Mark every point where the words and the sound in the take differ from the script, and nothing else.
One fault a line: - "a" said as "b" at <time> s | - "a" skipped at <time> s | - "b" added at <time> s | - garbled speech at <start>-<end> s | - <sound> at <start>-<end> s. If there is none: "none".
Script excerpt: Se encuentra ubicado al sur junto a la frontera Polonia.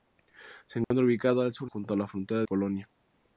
- dropout at 0.8-0.9 s